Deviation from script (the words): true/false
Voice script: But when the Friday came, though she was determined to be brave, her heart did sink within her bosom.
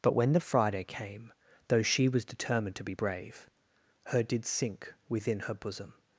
true